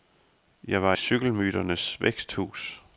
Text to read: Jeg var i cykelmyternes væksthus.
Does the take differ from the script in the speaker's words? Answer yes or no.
yes